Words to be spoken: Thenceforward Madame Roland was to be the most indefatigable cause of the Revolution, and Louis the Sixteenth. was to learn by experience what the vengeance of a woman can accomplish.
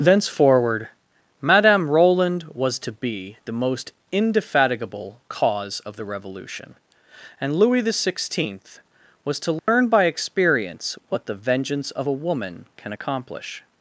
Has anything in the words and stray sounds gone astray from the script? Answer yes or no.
yes